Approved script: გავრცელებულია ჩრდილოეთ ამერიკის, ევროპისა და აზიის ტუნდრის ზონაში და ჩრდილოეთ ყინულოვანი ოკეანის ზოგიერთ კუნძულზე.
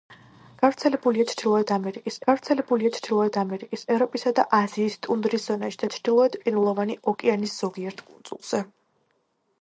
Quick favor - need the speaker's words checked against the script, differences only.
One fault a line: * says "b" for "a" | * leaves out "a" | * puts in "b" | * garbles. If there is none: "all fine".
* puts in "გავრცელებულია ჩრდილოეთ ამერიკის"